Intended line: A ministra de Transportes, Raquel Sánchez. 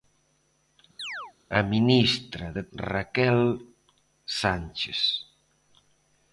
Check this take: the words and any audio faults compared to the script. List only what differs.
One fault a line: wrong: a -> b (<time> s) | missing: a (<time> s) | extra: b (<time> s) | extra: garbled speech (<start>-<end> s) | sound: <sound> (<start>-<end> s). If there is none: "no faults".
sound: chirp (1.0-1.3 s)
missing: Transportes (2.6 s)